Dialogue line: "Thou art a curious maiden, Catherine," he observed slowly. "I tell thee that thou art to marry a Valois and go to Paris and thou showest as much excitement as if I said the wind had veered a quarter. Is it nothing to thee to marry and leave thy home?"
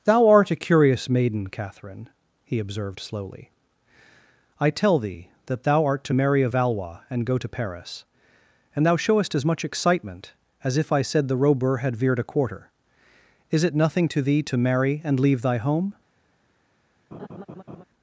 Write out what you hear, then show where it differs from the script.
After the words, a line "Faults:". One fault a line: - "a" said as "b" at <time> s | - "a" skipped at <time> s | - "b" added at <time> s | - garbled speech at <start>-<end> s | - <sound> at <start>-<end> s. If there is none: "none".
"Thou art a curious maiden, Catherine," he observed slowly. "I tell thee that thou art to marry a Valois and go to Paris and thou showest as much excitement as if I said the robur had veered a quarter. Is it nothing to thee to marry and leave thy home?"
Faults:
- "wind" said as "robur" at 11.4 s
- laugh at 17.1-17.8 s